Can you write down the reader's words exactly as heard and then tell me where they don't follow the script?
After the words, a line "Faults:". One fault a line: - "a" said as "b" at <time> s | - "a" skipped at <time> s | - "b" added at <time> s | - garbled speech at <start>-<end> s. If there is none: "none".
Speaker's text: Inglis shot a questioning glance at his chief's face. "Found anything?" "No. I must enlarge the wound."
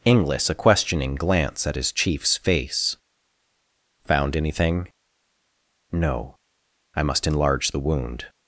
Inglis a questioning glance at his chief's face. "Found anything?" "No. I must enlarge the wound."
Faults:
- "shot" skipped at 0.5 s